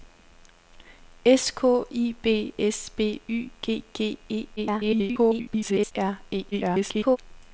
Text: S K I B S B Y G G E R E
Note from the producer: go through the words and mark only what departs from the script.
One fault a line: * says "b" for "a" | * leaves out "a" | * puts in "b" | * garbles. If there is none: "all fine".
* garbles
* garbles